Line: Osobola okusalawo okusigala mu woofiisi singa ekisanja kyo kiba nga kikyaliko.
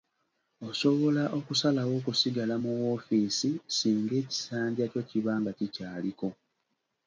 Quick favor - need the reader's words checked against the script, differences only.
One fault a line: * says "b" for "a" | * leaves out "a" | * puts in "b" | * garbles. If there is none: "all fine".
all fine